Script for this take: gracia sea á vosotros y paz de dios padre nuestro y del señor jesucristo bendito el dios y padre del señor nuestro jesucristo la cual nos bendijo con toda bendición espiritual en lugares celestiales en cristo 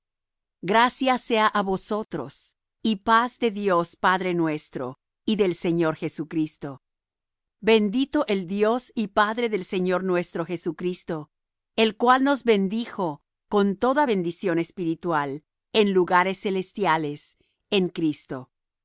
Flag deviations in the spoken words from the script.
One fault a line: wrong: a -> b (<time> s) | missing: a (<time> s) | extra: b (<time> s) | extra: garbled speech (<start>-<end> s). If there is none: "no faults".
wrong: la -> el (11.8 s)